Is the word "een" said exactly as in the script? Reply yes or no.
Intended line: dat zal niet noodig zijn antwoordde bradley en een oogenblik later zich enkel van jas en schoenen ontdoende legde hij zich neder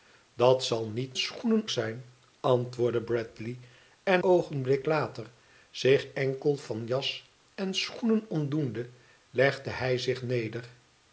no